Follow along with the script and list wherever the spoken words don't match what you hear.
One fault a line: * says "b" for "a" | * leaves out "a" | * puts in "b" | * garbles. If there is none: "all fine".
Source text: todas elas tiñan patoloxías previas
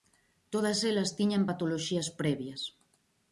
all fine